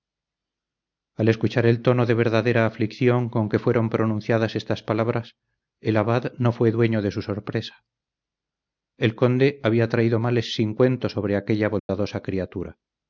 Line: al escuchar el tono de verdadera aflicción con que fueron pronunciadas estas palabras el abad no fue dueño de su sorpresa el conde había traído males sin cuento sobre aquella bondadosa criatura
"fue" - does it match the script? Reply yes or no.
yes